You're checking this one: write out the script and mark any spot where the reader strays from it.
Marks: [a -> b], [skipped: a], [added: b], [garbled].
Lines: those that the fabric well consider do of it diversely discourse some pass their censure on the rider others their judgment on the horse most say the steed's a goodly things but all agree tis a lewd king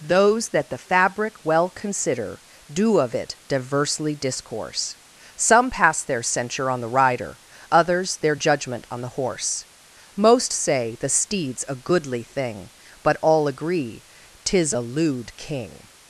those that the fabric well consider do of it diversely discourse some pass their censure on the rider others their judgment on the horse most say the steed's a goodly [things -> thing] but all agree tis a lewd king